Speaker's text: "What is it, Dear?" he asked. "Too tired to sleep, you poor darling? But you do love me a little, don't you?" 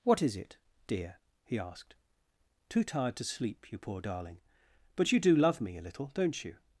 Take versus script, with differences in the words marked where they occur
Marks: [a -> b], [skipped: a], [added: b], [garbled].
"What is it, Dear?" he asked. "Too tired to sleep, you poor darling? But you do love me a little, don't you?"